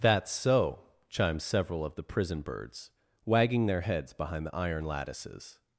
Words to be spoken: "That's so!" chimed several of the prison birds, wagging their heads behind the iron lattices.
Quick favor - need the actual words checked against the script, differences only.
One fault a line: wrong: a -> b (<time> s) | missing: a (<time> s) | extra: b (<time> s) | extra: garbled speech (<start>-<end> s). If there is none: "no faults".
no faults